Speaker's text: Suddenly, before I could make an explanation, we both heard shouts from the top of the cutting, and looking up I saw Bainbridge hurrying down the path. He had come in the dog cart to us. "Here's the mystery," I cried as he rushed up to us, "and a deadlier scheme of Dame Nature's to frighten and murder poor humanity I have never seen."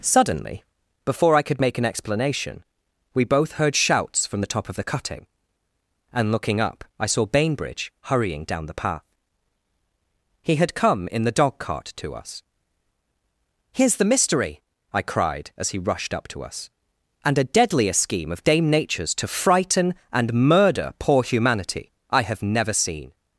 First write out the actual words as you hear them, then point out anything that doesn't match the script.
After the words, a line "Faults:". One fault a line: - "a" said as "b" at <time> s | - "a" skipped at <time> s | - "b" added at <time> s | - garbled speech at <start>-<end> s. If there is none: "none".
Suddenly, before I could make an explanation, we both heard shouts from the top of the cutting, and looking up I saw Bainbridge hurrying down the path. He had come in the dog cart to us. "Here's the mystery," I cried as he rushed up to us, "and a deadlier scheme of Dame Nature's to frighten and murder poor humanity I have never seen."
Faults:
none